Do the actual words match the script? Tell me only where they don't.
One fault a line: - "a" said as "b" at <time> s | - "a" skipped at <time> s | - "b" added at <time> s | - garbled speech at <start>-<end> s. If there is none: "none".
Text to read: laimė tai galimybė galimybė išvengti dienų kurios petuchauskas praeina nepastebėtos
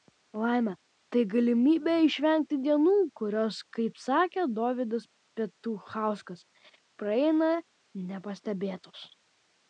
- "galimybė" skipped at 2.0 s
- "kaip sakė dovydas" added at 3.8 s